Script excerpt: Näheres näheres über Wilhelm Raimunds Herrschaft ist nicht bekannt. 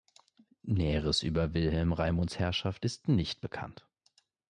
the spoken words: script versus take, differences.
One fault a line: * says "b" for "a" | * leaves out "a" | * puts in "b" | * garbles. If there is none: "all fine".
* leaves out "näheres"